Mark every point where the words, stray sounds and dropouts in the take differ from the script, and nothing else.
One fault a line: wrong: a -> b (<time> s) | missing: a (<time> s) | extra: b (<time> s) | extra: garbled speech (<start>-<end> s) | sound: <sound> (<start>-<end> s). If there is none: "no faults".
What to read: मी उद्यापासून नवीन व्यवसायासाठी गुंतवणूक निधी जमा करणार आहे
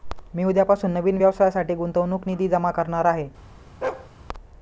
sound: bark (3.8-4.1 s)